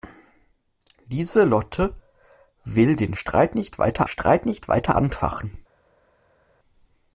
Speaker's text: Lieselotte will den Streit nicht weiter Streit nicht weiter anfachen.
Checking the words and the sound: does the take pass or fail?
pass